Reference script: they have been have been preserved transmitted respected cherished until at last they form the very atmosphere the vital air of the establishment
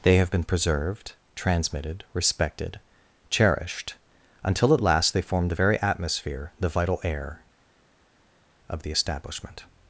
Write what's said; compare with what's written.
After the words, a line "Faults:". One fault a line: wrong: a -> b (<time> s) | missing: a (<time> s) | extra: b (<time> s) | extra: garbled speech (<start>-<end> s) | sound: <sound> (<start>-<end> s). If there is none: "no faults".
they have been preserved transmitted respected cherished until at last they form the very atmosphere the vital air of the establishment
Faults:
missing: have been (0.4 s)